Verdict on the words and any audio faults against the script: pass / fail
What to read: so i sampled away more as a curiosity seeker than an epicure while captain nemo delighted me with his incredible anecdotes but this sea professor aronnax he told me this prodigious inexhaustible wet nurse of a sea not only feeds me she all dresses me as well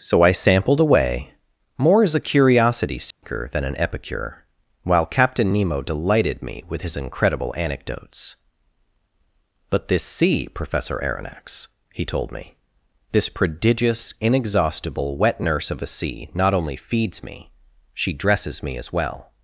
fail